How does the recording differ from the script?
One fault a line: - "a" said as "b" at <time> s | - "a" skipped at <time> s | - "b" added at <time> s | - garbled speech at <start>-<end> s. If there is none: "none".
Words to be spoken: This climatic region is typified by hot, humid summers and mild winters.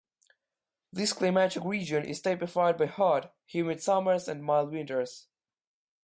none